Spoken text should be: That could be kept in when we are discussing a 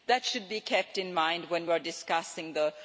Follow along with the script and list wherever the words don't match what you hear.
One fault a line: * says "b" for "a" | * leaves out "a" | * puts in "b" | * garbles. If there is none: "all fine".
* says "should" for "could"
* puts in "mind"
* says "the" for "a"